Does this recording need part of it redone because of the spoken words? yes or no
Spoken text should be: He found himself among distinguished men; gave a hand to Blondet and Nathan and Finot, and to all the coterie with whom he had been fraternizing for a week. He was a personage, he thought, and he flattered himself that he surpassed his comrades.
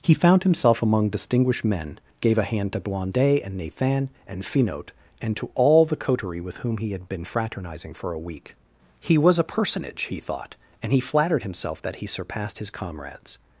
no